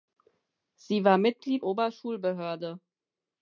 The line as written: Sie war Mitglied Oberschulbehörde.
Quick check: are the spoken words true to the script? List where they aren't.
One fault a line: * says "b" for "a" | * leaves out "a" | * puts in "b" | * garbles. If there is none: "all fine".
all fine